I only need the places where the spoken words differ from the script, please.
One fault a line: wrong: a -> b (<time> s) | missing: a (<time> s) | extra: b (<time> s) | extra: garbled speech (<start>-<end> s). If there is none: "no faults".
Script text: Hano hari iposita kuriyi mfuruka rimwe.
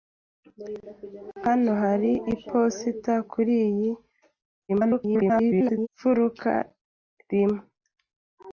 extra: garbled speech (4.7-5.9 s)